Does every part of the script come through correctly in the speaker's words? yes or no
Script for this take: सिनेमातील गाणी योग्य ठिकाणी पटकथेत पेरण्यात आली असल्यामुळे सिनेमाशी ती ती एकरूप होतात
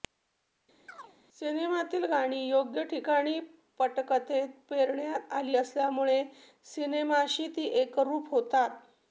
no